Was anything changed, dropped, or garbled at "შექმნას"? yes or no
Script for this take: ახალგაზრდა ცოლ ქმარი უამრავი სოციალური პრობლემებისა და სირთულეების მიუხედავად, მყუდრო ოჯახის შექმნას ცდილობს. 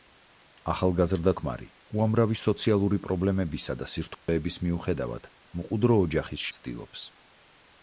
yes